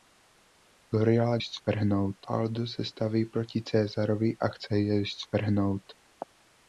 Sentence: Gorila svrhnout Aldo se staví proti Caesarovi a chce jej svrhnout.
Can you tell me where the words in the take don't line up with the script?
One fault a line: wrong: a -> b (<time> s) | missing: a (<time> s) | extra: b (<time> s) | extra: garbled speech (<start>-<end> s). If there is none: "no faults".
no faults